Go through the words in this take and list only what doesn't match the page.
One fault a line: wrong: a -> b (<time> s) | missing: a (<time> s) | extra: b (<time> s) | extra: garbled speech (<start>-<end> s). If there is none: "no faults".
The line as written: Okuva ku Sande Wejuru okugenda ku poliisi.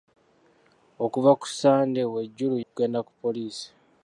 no faults